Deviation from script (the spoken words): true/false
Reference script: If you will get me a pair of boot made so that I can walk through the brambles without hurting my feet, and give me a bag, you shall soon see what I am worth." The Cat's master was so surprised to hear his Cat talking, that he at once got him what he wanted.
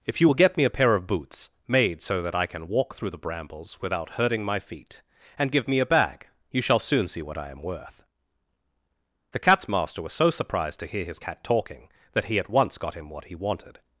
true